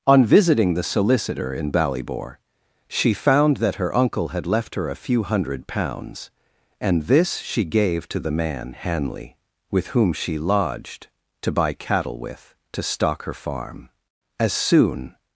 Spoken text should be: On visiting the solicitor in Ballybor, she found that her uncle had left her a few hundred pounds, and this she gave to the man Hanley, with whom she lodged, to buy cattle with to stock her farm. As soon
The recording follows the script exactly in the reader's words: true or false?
true